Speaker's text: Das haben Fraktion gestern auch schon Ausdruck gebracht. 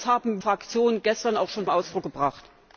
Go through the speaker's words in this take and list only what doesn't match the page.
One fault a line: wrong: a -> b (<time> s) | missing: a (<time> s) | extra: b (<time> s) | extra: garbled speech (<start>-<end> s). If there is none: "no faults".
no faults